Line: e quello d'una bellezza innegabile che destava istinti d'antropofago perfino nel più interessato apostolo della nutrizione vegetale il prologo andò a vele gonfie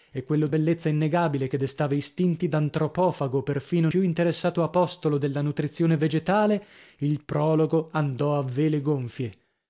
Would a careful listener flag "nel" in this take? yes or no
yes